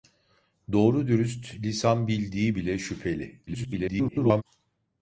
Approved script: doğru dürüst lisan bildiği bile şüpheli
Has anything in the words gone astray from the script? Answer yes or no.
yes